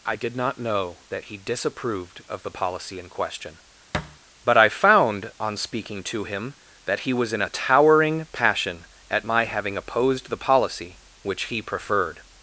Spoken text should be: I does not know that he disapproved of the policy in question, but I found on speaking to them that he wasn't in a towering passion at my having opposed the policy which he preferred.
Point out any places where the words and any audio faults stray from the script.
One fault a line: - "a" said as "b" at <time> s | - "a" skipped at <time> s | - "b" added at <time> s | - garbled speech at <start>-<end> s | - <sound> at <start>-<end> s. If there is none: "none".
- "does" said as "did" at 0.1 s
- thud at 3.9-4.2 s
- "them" said as "him" at 6.2 s
- "wasn't" said as "was" at 7.1 s